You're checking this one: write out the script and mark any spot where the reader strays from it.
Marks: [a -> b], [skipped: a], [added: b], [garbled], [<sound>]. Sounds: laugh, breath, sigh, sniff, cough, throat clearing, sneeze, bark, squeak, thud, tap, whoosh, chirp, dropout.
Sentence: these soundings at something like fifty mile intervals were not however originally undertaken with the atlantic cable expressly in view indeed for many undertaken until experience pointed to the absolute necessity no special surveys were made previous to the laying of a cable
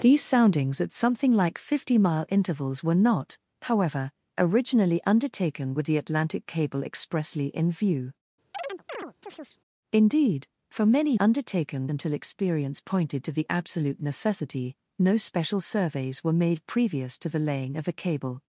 these soundings at something like fifty mile intervals were not however originally undertaken with the atlantic cable expressly in view [chirp] indeed for many undertaken until experience pointed to the absolute necessity no special surveys were made previous to the laying of a cable